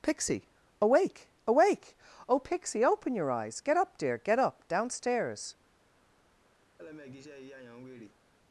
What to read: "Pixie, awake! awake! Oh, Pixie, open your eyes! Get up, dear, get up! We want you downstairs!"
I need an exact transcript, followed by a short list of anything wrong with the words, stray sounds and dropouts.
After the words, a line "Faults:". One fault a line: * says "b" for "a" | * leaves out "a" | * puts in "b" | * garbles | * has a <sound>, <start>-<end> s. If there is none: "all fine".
"Pixie, awake! awake! Oh, Pixie, open your eyes! Get up, dear, get up! downstairs!"
Faults:
* leaves out "We want you"
* has a laugh, 6.8-8.2 s